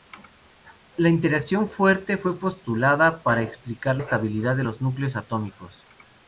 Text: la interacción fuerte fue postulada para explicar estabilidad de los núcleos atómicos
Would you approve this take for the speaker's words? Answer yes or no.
yes